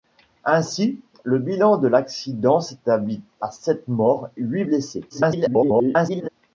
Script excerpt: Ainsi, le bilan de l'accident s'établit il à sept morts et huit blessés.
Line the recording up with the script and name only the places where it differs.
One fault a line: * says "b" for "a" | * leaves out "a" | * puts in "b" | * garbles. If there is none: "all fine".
* leaves out "il"
* leaves out "et"
* garbles